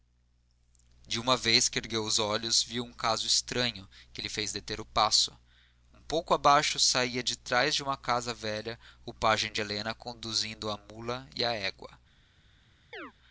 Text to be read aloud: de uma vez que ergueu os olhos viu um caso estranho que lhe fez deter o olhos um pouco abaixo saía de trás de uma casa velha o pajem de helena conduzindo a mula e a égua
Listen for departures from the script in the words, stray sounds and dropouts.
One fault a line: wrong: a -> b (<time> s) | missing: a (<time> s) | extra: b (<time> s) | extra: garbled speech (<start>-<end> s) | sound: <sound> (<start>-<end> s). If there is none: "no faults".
wrong: olhos -> passo (4.8 s)
sound: chirp (12.9-13.1 s)